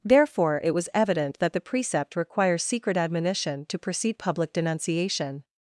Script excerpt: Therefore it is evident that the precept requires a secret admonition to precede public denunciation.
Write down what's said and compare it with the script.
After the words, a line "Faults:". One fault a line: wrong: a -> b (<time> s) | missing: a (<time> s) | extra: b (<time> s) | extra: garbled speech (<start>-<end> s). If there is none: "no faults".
Therefore it was evident that the precept requires secret admonition to precede public denunciation.
Faults:
wrong: is -> was (0.7 s)
missing: a (2.6 s)